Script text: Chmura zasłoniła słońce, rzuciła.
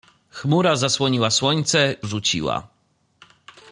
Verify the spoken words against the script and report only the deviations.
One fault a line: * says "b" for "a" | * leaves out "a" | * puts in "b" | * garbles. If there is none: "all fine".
all fine